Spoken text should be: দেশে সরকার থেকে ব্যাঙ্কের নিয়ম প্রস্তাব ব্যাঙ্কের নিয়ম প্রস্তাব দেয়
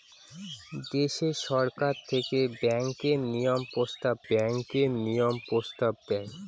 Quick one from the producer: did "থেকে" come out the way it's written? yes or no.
yes